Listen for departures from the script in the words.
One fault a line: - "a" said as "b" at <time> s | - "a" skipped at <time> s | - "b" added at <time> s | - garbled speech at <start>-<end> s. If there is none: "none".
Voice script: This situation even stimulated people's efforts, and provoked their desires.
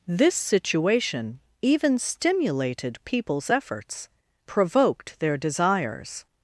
- "and" skipped at 4.1 s